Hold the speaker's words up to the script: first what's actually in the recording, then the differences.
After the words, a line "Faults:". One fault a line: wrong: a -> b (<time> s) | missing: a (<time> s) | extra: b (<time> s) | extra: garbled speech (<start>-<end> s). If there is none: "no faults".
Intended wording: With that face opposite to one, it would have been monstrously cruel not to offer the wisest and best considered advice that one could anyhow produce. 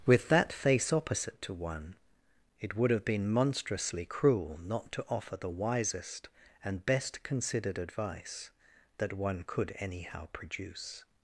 With that face opposite to one, it would have been monstrously cruel not to offer the wisest and best considered advice that one could anyhow produce.
Faults:
no faults